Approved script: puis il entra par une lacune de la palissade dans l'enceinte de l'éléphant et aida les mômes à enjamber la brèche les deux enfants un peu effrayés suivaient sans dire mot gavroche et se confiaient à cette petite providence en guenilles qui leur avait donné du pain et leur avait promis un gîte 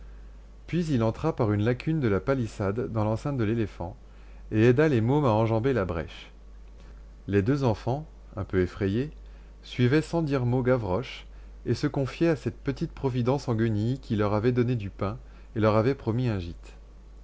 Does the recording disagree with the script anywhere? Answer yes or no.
no